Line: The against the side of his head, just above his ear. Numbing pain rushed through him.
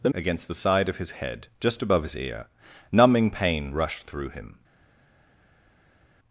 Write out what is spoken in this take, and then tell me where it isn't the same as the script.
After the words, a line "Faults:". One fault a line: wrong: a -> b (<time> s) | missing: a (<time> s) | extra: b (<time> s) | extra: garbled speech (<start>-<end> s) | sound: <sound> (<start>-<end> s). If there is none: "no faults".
The against the side of his head, just above his ear. Numbing pain rushed through him.
Faults:
no faults